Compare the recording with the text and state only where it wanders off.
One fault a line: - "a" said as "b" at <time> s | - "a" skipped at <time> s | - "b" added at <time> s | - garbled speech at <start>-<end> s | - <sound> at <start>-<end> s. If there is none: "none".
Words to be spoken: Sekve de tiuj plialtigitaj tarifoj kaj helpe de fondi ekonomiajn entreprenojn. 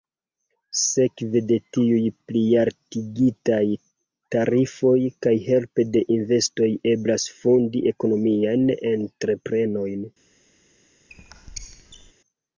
- "investoj eblas" added at 6.2 s
- squeak at 11.1-12.1 s